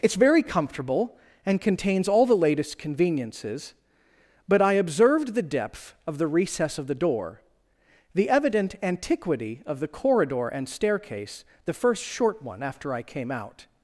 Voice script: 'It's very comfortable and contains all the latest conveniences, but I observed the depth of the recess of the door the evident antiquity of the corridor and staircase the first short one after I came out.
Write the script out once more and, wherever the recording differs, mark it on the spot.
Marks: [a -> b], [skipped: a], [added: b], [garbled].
'It's very comfortable and contains all the latest conveniences, but I observed the depth of the recess of the door the evident antiquity of the corridor and staircase the first short one after I came out.